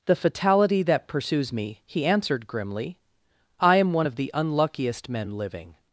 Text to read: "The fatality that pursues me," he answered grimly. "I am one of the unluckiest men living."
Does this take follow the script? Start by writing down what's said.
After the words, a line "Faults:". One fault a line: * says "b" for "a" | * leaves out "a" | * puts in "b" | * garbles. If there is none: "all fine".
"The fatality that pursues me," he answered grimly. "I am one of the unluckiest men living."
Faults:
all fine